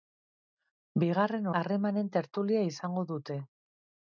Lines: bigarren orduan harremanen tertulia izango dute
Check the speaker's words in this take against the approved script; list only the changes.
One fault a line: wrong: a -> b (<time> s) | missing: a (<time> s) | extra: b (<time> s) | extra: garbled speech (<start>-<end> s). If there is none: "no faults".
missing: orduan (1.5 s)